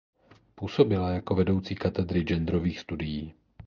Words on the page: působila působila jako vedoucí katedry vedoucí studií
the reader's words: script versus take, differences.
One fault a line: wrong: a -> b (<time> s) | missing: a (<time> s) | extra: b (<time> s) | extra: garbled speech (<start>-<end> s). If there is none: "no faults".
missing: působila (1.1 s)
wrong: vedoucí -> genderových (2.2 s)